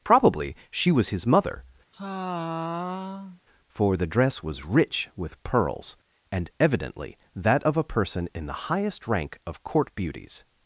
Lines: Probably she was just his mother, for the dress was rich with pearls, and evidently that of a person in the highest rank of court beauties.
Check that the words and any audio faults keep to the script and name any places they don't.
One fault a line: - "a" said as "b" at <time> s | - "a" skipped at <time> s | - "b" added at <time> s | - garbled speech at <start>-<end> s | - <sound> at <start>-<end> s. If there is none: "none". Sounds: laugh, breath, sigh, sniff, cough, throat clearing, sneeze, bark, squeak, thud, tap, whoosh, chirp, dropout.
- "just" skipped at 1.1 s
- sigh at 1.9-3.4 s